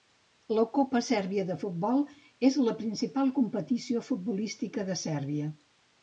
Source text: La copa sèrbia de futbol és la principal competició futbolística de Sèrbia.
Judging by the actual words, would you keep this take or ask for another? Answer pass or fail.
pass